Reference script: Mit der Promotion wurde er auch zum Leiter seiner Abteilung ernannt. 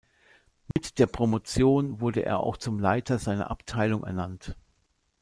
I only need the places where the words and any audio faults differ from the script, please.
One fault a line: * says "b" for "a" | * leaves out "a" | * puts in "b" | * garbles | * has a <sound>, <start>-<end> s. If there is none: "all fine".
* has a dropout, 0.7-0.8 s